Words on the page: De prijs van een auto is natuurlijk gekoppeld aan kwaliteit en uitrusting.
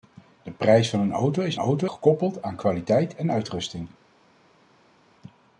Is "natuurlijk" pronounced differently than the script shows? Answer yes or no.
yes